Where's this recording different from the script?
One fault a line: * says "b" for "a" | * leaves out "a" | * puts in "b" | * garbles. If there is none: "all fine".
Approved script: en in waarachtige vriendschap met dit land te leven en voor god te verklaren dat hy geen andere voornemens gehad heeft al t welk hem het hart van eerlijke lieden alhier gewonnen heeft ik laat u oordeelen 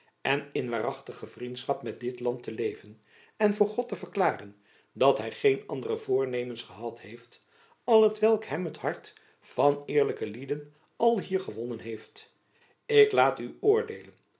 all fine